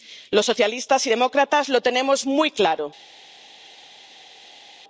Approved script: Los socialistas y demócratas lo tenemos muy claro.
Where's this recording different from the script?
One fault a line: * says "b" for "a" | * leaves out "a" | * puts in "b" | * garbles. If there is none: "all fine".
all fine